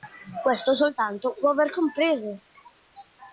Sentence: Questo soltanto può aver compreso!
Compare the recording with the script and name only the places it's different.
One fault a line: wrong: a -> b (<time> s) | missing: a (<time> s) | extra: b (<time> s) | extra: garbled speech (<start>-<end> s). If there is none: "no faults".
no faults